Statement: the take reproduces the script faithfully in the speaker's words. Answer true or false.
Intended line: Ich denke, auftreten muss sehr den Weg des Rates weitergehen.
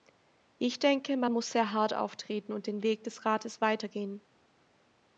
false